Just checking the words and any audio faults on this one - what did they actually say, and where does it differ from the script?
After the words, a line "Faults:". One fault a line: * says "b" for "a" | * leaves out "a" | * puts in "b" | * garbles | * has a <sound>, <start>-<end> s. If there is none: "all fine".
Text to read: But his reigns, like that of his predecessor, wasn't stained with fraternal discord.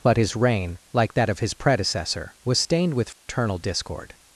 But his reign, like that of his predecessor, was stained with fraternal discord.
Faults:
* says "reign" for "reigns"
* says "was" for "wasn't"
* has a dropout, 3.1-3.3 s